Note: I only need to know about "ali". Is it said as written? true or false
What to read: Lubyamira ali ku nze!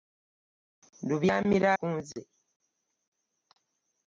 false